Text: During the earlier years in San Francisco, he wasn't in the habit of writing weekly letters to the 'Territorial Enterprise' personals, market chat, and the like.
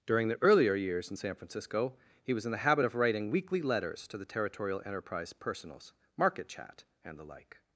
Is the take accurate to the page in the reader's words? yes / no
no